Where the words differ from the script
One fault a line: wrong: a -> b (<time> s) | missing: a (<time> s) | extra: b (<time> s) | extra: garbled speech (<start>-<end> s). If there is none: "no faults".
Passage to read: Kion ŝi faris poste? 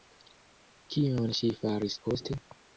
no faults